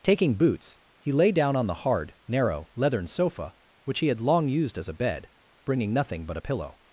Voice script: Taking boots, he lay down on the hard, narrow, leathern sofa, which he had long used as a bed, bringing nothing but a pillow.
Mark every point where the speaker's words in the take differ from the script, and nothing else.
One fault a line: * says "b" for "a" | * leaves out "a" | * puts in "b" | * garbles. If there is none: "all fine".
all fine